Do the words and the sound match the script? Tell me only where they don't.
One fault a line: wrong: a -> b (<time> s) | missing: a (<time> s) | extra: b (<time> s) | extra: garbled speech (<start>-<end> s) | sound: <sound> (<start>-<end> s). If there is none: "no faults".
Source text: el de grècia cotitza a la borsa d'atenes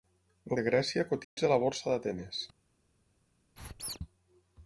sound: dropout (1.2-1.4 s)
sound: squeak (3.6-4.0 s)